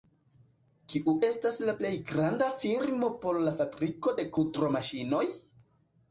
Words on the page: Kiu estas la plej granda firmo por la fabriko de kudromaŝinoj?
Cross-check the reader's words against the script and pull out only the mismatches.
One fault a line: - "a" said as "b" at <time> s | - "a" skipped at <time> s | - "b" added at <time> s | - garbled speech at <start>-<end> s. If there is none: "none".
none